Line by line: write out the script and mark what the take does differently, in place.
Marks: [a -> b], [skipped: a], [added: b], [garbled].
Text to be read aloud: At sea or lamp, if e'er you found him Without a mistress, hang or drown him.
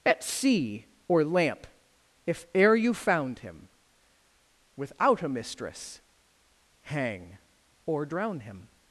At sea or lamp, if e'er you found him Without a mistress, hang or drown him.